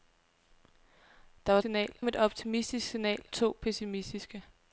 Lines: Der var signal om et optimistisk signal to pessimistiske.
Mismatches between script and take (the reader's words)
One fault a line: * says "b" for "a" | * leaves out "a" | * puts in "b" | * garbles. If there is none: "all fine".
all fine